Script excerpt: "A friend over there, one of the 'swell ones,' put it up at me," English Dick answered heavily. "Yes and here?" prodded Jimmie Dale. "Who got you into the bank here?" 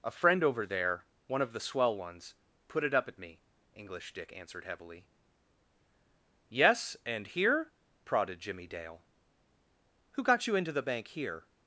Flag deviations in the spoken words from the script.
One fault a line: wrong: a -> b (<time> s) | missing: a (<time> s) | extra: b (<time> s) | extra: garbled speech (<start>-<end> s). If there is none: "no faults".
no faults